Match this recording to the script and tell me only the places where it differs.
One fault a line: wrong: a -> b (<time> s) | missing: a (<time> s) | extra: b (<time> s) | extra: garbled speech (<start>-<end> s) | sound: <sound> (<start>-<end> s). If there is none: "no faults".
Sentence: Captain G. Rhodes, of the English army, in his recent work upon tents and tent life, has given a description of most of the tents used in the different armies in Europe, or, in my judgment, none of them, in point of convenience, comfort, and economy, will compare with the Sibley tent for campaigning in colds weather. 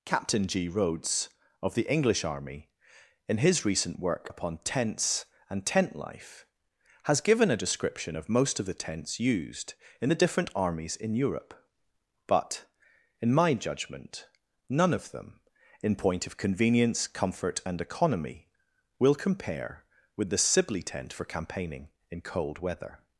wrong: or -> but (12.3 s)
wrong: colds -> cold (22.2 s)